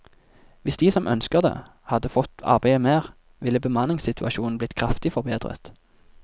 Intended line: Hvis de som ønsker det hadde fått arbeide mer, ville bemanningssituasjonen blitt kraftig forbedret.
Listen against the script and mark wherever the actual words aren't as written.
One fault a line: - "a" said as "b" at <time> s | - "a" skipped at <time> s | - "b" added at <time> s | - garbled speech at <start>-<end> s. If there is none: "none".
none